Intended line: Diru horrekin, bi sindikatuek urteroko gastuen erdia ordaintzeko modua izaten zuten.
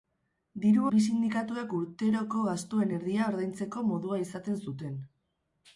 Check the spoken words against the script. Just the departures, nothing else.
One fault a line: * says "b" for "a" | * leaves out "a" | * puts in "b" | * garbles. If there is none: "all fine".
* leaves out "horrekin"